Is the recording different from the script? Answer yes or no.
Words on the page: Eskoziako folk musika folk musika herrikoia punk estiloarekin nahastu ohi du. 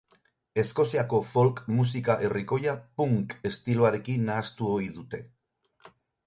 yes